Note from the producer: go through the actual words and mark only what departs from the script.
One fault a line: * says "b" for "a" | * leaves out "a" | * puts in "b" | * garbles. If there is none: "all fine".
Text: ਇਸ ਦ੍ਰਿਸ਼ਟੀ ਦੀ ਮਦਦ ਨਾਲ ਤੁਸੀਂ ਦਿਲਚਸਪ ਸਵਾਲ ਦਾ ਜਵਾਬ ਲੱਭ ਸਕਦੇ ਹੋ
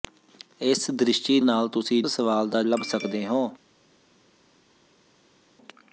* leaves out "ਦੀ ਮਦਦ"
* leaves out "ਦਿਲਚਸਪ"
* leaves out "ਜਵਾਬ"